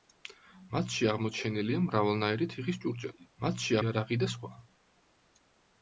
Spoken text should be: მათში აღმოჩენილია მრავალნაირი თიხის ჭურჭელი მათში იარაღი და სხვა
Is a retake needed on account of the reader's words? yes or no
no